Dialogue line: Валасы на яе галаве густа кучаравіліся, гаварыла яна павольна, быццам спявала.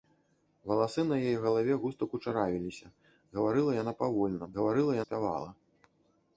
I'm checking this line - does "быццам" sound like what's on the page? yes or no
no